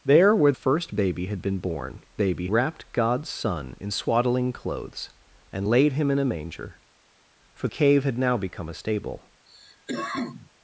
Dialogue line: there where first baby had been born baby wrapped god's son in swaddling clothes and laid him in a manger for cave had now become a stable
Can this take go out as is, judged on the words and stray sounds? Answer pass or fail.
fail